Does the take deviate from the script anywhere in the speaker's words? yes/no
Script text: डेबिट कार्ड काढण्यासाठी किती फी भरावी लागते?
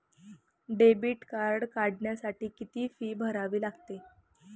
no